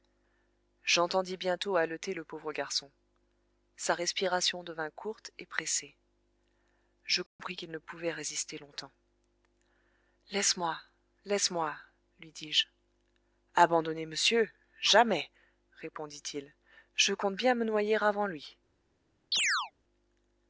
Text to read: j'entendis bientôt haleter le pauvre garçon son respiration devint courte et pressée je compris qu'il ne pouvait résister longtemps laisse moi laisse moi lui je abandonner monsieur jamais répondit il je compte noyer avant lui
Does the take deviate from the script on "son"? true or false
true